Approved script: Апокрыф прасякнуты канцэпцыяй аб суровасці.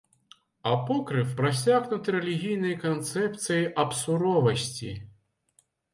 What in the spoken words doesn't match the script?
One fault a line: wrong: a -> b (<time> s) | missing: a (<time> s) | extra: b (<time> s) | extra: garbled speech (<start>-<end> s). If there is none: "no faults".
extra: рэлігійнай (2.2 s)